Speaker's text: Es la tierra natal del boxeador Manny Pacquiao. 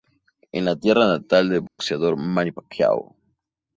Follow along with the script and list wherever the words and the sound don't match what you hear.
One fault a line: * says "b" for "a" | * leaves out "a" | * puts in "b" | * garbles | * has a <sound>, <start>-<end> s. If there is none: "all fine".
* has a dropout, 1.7-1.8 s